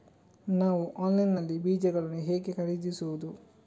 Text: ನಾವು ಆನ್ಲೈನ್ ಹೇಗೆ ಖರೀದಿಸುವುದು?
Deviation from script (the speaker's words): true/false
true